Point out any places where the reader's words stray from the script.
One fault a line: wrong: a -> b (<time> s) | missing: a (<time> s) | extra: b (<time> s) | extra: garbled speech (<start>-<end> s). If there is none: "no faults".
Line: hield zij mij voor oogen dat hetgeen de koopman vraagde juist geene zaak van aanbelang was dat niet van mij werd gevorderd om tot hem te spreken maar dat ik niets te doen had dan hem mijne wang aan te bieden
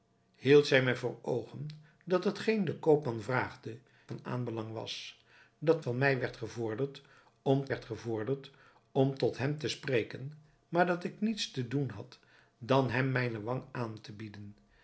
missing: juist geene zaak (3.8 s)
missing: niet (5.8 s)
extra: werd gevorderd om (7.7 s)